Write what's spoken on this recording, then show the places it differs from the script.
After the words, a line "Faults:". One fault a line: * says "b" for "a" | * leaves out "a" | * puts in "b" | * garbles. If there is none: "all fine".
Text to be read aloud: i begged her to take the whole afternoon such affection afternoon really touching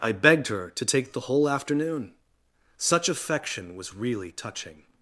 i begged her to take the whole afternoon such affection was really touching
Faults:
* says "was" for "afternoon"